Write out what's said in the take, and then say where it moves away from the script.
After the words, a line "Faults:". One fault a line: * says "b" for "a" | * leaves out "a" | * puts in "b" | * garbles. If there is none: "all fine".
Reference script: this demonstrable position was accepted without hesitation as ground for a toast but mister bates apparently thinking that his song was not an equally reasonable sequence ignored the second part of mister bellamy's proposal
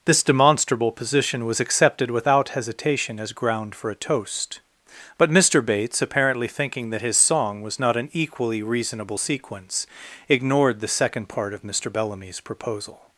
this demonstrable position was accepted without hesitation as ground for a toast but mister bates apparently thinking that his song was not an equally reasonable sequence ignored the second part of mister bellamy's proposal
Faults:
all fine